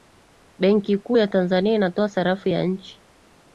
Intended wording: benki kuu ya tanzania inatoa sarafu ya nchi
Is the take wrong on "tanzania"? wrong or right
right